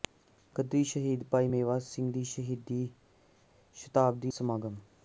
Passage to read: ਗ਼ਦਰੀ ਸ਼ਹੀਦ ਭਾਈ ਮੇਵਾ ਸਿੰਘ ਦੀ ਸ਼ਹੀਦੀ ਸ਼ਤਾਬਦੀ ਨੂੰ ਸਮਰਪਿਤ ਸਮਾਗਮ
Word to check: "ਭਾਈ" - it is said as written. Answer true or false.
true